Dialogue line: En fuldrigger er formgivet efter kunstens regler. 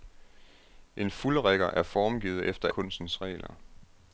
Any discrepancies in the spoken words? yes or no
no